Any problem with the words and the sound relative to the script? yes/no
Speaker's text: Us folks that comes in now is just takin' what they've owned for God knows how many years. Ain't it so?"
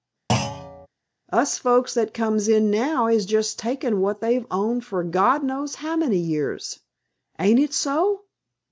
yes